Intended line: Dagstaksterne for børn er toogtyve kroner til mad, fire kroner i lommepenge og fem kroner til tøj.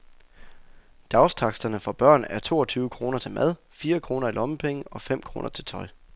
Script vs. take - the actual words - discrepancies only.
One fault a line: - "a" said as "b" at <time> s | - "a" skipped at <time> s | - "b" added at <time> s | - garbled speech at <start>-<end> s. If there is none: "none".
none